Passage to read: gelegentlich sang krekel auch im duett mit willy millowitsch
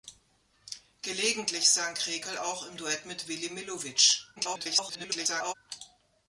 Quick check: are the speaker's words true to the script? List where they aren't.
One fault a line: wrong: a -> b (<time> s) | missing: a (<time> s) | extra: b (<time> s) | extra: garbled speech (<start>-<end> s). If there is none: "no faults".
extra: garbled speech (4.4-5.5 s)